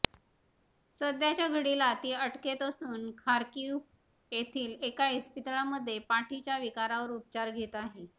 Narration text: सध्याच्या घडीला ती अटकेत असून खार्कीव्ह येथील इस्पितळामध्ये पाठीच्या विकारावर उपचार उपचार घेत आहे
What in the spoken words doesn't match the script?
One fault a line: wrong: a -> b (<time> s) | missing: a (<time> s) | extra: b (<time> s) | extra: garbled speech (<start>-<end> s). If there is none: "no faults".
extra: एका (4.8 s)
missing: उपचार (7.5 s)